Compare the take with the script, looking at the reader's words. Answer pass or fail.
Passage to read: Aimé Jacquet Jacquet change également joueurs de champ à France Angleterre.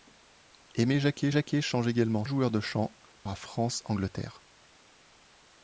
pass